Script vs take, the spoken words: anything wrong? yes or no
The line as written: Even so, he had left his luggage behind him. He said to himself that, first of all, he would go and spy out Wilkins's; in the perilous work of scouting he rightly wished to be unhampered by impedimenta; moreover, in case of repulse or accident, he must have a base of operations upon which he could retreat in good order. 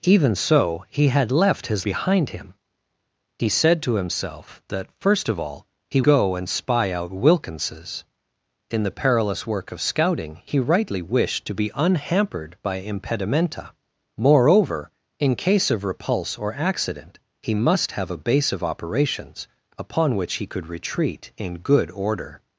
yes